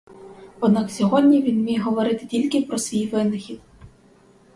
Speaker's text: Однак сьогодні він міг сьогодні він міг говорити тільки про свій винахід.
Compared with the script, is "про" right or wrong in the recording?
right